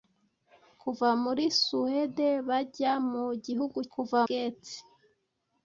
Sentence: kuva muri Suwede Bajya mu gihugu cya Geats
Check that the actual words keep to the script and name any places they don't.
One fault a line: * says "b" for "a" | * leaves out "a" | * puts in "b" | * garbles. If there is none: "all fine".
* says "kuva" for "cya"